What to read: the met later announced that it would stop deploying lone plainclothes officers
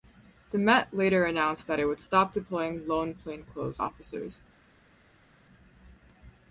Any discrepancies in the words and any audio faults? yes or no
no